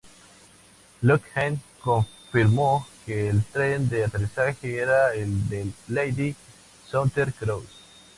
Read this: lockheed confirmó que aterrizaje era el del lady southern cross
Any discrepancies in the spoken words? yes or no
yes